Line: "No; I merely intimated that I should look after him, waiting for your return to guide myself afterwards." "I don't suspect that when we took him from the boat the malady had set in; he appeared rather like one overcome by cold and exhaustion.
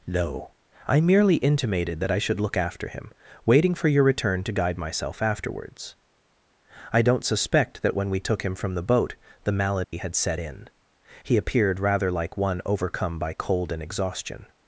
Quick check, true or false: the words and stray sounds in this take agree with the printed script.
false